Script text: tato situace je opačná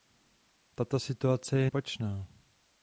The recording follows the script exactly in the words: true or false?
true